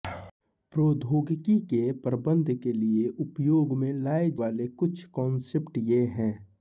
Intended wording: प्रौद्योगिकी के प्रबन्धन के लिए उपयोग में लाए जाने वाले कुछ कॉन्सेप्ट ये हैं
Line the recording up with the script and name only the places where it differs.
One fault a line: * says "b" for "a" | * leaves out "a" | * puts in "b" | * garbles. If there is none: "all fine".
* leaves out "जाने"